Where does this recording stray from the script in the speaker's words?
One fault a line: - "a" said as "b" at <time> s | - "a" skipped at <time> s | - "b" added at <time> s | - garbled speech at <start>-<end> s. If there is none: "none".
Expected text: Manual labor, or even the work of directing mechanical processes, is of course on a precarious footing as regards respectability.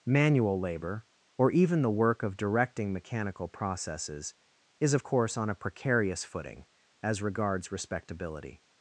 none